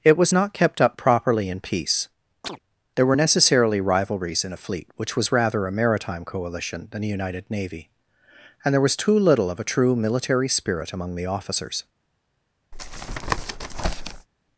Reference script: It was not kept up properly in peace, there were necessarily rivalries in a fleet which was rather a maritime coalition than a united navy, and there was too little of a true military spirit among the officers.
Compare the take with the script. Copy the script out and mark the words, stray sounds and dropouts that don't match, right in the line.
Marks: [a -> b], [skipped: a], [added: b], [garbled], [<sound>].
It was not kept up properly in peace, [chirp] there were necessarily rivalries in a fleet which was rather a maritime coalition than a united navy, and there was too little of a true military spirit among the officers. [tap]